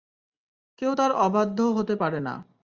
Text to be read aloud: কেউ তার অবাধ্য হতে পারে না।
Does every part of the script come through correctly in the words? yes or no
yes